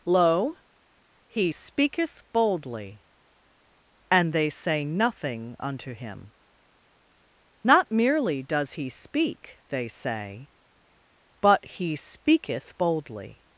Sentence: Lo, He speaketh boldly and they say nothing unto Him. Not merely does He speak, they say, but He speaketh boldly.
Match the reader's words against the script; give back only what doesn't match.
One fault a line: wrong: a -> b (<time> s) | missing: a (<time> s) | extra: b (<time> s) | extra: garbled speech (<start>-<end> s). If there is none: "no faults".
no faults